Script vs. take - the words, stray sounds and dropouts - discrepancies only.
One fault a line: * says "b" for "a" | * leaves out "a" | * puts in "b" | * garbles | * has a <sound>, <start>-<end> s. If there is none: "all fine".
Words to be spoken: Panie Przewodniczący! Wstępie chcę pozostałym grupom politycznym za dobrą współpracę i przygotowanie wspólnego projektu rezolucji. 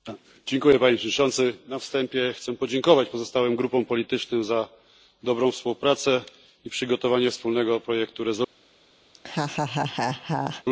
* puts in "Na"
* puts in "podziękować"
* has a laugh, 9.1-10.6 s